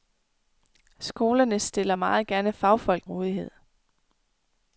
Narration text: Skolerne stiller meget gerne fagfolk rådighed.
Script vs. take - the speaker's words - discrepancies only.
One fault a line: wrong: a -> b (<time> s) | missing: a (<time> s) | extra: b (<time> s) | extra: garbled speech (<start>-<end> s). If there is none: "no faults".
no faults